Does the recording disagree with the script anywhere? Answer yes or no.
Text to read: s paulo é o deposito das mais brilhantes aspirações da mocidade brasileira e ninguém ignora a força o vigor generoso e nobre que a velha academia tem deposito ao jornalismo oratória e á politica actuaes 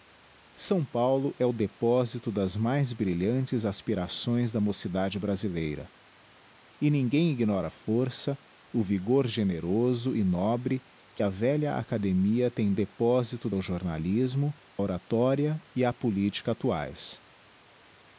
no